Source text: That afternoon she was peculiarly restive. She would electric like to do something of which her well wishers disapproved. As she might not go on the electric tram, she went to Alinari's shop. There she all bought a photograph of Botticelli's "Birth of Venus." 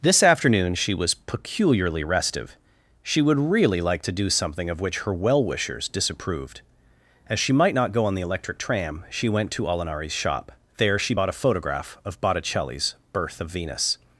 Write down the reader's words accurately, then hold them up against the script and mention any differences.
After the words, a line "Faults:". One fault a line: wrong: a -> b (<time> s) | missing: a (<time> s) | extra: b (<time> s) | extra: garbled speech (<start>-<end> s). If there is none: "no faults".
This afternoon she was peculiarly restive. She would really like to do something of which her well wishers disapproved. As she might not go on the electric tram, she went to Alinari's shop. There she bought a photograph of Botticelli's "Birth of Venus."
Faults:
wrong: That -> This (0.0 s)
wrong: electric -> really (3.4 s)
missing: all (11.1 s)